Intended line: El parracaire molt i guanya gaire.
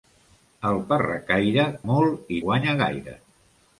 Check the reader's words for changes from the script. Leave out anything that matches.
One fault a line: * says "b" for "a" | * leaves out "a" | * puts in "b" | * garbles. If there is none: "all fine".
all fine